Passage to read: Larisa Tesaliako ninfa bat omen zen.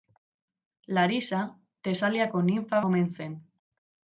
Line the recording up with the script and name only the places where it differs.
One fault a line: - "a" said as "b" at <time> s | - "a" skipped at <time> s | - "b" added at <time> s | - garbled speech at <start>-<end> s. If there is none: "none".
- "bat" skipped at 2.8 s